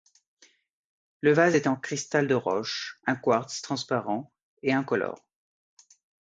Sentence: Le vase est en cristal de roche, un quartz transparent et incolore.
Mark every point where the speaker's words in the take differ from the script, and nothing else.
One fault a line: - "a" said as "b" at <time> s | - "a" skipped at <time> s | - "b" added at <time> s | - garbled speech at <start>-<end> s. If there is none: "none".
none